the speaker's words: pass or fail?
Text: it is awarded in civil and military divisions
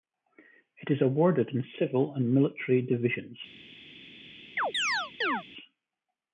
pass